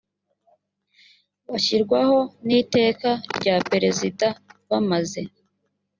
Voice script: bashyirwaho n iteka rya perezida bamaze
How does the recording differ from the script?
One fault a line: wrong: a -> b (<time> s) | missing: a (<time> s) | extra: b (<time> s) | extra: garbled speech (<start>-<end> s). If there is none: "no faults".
no faults